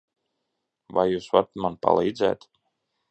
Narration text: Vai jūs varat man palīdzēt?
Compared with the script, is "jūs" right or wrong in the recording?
right